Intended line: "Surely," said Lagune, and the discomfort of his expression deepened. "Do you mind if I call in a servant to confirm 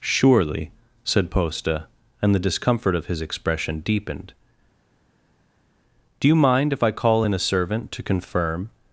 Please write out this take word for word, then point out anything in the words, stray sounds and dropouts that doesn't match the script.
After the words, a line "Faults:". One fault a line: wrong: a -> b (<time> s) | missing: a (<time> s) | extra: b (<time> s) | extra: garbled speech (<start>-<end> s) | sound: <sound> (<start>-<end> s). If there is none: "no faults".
"Surely," said Posta, and the discomfort of his expression deepened. "Do you mind if I call in a servant to confirm
Faults:
wrong: Lagune -> Posta (1.3 s)